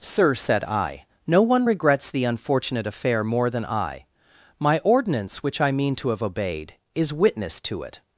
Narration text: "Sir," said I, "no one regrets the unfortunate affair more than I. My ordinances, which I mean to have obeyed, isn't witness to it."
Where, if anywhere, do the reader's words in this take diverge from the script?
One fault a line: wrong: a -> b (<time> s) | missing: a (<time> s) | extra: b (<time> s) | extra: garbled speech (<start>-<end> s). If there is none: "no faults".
wrong: ordinances -> ordinance (4.8 s)
wrong: isn't -> is (6.9 s)